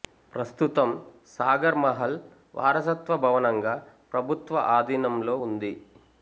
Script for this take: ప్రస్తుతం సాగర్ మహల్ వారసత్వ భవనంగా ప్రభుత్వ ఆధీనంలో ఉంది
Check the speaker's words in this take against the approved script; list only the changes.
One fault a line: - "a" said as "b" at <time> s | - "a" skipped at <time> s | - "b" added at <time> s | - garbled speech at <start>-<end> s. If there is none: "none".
none